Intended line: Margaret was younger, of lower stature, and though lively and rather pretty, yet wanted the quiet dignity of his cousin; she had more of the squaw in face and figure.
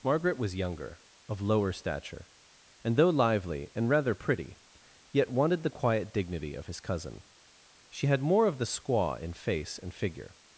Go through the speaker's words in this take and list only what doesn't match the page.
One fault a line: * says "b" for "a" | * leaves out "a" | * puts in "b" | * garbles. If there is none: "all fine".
all fine